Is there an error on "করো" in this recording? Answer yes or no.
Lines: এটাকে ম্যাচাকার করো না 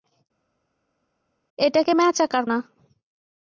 yes